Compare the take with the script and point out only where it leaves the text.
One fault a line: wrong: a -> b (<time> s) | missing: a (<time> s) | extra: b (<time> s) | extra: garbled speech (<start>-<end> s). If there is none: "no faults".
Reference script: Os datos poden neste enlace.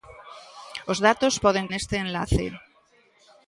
no faults